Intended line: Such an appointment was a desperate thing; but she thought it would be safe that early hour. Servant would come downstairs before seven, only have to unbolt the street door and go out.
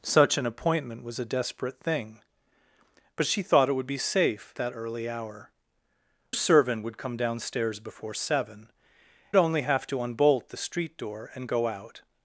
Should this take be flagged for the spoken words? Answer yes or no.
no